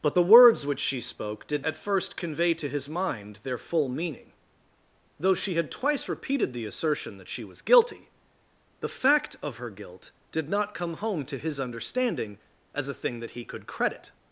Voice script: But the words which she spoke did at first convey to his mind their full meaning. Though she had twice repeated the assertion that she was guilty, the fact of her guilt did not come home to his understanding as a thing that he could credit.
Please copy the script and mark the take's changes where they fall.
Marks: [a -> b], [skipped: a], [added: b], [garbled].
But the words which she spoke did at first convey to his mind their full meaning. Though she had twice repeated the assertion that she was guilty, the fact of her guilt did not come home to his understanding as a thing that he could credit.